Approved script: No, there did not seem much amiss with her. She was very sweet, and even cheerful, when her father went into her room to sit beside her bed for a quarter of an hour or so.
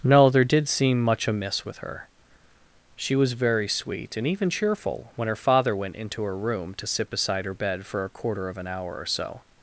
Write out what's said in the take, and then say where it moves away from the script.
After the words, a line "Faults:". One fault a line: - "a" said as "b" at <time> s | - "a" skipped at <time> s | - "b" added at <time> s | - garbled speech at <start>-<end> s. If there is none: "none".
No, there did seem much amiss with her. She was very sweet, and even cheerful, when her father went into her room to sit beside her bed for a quarter of an hour or so.
Faults:
- "not" skipped at 0.7 s